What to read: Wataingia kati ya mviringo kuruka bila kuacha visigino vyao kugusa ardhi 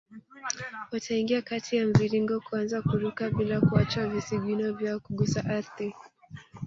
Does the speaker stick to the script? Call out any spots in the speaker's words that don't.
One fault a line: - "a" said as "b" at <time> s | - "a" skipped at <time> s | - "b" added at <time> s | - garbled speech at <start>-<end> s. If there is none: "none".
- "kuanza" added at 2.4 s